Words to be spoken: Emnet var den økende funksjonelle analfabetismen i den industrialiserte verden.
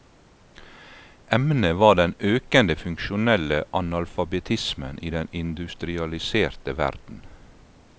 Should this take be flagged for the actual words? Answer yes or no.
no